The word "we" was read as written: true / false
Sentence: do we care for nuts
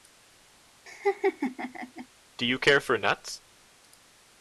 false